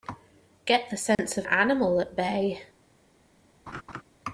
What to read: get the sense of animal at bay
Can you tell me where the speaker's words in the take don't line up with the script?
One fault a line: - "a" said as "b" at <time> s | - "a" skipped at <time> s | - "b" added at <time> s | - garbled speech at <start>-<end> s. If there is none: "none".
none